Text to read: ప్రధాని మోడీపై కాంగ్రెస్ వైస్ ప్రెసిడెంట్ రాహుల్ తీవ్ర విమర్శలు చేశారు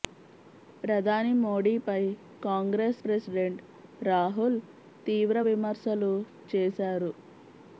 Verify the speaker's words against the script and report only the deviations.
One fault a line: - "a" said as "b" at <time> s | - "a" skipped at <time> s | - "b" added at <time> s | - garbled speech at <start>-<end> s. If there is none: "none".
- "వైస్" skipped at 3.0 s